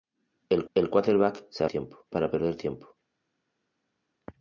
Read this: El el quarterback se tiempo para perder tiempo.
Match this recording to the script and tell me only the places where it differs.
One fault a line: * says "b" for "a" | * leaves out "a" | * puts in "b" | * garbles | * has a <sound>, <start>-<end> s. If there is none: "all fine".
all fine